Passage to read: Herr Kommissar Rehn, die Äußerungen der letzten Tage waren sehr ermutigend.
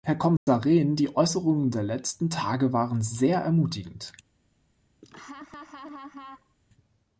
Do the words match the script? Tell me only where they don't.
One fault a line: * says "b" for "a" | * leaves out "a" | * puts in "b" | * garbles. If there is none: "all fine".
all fine